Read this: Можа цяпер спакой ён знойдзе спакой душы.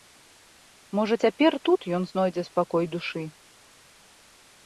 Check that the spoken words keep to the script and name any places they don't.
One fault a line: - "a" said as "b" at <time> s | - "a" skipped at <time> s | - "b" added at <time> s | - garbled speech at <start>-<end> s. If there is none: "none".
- "спакой" said as "тут" at 1.7 s